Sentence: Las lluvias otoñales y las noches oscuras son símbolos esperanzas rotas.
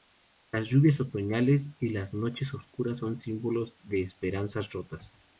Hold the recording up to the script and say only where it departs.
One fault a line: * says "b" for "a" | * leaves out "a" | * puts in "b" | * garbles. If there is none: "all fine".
* puts in "de"